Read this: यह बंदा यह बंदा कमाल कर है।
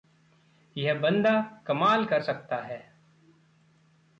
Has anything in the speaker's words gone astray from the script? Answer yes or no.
yes